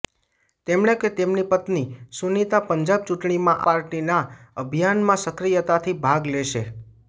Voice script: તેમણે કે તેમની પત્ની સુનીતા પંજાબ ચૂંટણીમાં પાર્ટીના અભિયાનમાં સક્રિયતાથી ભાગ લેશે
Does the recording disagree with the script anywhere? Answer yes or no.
no